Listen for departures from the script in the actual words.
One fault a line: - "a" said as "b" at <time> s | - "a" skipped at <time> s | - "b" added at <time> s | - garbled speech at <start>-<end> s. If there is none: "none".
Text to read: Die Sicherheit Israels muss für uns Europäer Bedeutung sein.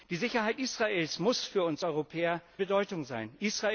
none